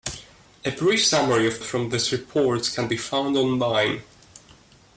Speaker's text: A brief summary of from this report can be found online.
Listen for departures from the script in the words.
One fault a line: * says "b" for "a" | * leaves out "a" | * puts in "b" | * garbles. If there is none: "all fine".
all fine